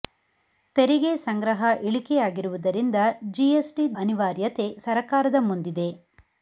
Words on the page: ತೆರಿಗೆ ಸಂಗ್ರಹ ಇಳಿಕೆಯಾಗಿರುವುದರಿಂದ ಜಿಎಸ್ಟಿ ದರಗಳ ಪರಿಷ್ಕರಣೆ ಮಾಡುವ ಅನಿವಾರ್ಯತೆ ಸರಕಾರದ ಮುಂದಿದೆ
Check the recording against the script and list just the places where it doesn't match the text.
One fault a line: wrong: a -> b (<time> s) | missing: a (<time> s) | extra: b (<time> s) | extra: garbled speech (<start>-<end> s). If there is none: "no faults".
missing: ದರಗಳ ಪರಿಷ್ಕರಣೆ ಮಾಡುವ (4.0 s)